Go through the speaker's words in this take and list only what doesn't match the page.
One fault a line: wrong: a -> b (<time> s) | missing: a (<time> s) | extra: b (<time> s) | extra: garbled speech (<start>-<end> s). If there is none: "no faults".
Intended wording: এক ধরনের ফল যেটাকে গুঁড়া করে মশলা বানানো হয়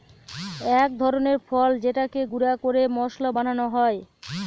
no faults